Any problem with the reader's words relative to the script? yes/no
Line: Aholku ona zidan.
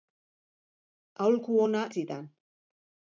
no